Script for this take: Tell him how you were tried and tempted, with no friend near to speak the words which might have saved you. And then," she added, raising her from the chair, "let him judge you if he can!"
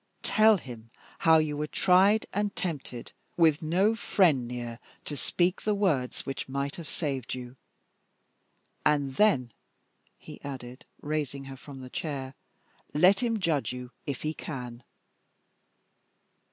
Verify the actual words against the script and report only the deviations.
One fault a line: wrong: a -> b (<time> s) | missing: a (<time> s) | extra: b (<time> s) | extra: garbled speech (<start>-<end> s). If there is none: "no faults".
wrong: she -> he (10.2 s)